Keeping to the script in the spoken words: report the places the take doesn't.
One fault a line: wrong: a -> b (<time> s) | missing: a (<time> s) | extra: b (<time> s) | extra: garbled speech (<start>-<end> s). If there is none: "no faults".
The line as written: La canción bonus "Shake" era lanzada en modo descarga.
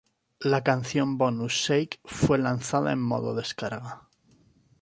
wrong: era -> fue (2.0 s)